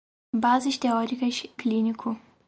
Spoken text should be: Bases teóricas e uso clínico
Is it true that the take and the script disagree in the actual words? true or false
true